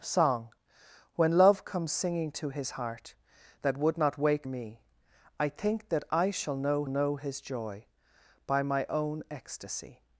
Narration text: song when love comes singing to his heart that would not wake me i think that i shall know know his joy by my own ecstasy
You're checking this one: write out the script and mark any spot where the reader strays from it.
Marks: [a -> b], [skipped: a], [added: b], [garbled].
song when love comes singing to his heart that would not wake me i think that i shall know know his joy by my own ecstasy